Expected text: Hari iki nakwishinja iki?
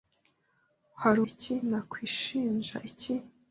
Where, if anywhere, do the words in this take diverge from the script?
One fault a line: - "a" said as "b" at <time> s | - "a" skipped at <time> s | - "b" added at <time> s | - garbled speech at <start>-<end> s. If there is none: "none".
none